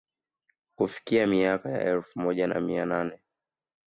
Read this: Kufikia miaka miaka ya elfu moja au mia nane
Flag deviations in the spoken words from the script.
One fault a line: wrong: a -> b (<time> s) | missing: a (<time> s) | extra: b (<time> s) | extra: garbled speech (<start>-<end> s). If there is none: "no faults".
missing: miaka (1.7 s)
wrong: au -> na (2.5 s)